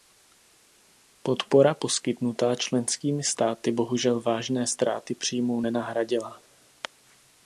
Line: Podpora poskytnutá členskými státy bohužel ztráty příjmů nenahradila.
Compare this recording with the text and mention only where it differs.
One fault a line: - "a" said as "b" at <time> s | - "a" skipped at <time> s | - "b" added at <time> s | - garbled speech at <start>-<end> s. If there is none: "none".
- "vážné" added at 4.2 s